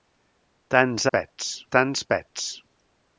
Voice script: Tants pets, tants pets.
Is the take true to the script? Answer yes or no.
yes